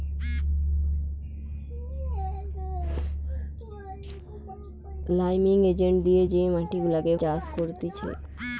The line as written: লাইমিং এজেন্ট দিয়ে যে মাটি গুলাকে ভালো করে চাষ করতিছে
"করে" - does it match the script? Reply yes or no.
no